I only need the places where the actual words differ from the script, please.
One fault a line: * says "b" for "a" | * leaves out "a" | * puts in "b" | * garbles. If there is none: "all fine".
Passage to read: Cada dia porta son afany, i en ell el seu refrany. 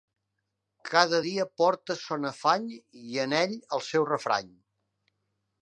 all fine